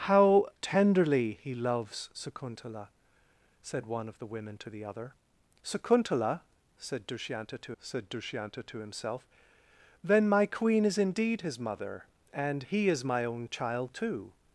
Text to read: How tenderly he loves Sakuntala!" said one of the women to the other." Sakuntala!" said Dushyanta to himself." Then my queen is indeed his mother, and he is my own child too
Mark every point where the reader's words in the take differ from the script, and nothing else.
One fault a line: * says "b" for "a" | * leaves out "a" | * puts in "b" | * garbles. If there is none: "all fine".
* puts in "said Dushyanta to"